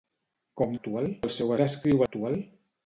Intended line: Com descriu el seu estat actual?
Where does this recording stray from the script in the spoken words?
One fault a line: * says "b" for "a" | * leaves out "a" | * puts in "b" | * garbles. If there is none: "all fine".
* says "actual" for "descriu"
* says "descriu" for "estat"